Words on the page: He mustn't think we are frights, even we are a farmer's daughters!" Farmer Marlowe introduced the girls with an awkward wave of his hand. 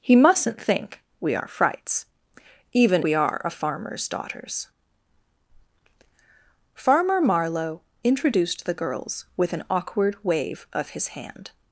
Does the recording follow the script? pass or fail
pass